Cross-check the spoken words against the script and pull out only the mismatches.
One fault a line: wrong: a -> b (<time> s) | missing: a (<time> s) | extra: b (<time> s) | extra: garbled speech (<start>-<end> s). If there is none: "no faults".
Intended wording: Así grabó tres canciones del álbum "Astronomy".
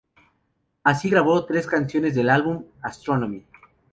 no faults